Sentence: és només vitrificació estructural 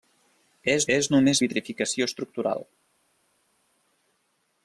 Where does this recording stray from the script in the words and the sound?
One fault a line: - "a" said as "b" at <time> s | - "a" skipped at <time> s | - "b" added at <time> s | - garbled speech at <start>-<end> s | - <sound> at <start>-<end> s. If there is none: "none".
- "és" added at 1.0 s